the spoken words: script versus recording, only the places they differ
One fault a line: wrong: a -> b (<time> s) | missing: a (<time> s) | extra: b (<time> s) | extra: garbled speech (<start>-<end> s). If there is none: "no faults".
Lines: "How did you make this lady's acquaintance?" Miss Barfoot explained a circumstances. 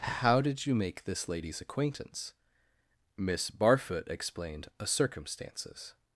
no faults